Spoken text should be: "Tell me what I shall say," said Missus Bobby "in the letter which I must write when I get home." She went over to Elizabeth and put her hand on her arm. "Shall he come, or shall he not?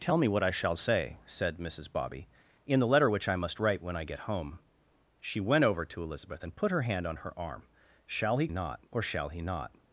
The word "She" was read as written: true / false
true